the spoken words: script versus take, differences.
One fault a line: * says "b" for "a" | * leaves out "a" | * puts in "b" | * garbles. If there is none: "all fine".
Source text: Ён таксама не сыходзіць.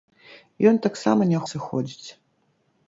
all fine